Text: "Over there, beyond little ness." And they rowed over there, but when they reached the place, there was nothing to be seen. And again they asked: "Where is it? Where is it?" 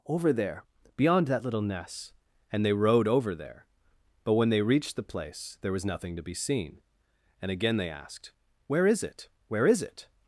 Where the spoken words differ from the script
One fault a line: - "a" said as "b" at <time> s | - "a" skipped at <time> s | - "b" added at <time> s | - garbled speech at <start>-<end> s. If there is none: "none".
- "that" added at 1.3 s